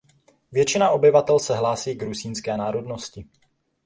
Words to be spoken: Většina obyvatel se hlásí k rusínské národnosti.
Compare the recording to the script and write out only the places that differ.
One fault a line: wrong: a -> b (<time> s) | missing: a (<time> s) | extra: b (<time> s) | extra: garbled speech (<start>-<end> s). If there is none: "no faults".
no faults